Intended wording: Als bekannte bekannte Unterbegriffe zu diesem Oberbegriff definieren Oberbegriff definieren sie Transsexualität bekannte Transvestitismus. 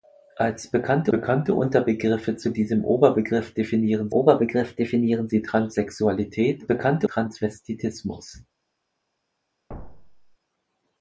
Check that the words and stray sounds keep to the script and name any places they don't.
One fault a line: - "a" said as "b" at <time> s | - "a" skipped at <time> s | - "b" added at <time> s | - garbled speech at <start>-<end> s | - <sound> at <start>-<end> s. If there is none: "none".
- thud at 9.7-10.4 s